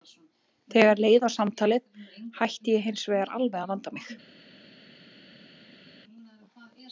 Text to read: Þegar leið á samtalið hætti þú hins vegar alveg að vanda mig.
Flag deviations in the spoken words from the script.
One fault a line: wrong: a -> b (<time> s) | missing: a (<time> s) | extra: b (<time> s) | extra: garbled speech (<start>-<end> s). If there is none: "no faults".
wrong: þú -> ég (2.8 s)